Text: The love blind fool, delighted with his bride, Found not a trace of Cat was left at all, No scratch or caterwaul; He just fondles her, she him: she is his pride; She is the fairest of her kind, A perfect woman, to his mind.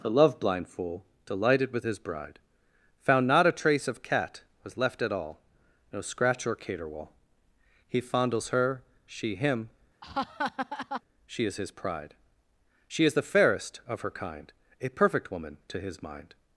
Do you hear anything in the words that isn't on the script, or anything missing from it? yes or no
yes